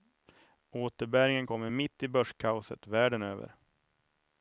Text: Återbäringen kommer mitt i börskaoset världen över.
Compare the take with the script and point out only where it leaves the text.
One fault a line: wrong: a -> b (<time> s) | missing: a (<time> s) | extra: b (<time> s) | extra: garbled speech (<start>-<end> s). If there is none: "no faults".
no faults